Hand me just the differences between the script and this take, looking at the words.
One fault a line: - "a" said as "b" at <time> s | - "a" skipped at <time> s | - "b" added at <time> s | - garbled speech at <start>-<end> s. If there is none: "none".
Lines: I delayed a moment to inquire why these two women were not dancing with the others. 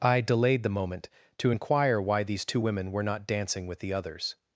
- "a" said as "the" at 0.6 s